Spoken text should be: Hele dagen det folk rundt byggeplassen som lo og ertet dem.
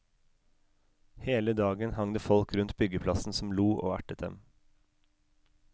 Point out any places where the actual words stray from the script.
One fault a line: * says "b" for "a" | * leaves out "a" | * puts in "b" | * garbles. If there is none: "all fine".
* puts in "hang"